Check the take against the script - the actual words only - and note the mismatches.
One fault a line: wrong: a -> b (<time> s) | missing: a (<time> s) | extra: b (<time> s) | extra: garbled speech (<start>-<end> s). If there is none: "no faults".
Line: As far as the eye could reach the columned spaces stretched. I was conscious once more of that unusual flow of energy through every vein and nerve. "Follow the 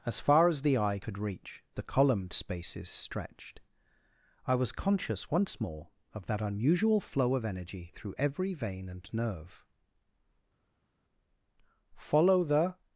no faults